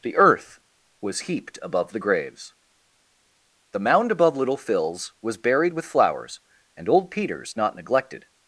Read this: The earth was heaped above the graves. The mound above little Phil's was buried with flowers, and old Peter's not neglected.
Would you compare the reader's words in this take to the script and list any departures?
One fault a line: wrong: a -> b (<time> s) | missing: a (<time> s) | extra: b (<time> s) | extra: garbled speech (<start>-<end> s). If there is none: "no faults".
no faults